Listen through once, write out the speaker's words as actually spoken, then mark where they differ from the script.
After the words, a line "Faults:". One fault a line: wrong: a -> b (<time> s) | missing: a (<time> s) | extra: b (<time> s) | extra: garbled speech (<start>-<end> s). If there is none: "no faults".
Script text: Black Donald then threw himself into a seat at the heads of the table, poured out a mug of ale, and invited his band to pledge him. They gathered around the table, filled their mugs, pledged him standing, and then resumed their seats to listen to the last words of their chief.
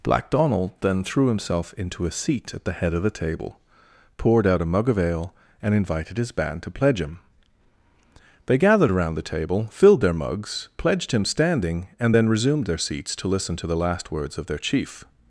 Black Donald then threw himself into a seat at the head of the table, poured out a mug of ale, and invited his band to pledge him. They gathered around the table, filled their mugs, pledged him standing, and then resumed their seats to listen to the last words of their chief.
Faults:
wrong: heads -> head (2.7 s)